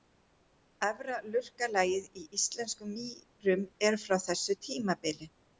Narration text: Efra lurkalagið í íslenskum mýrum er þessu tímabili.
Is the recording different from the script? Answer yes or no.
yes